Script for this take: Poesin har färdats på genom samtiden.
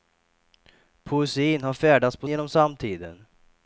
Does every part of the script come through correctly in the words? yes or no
yes